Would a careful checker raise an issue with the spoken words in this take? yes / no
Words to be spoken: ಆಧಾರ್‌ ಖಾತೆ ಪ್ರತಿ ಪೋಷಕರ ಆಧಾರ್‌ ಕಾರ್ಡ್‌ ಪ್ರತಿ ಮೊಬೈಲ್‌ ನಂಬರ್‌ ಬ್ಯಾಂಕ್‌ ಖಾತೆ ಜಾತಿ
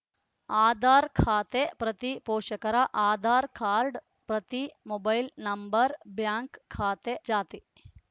no